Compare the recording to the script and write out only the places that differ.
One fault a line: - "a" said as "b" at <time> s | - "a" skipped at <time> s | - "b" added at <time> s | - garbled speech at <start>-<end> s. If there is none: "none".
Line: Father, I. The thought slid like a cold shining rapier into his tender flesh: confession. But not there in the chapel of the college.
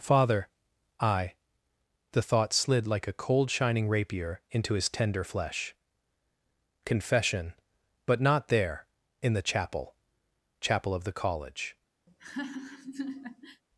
- "chapel" added at 10.6 s